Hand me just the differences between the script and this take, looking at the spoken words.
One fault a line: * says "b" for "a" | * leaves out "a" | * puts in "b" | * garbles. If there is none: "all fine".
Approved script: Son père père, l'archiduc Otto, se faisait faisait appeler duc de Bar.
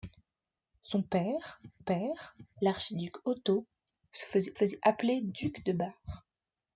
all fine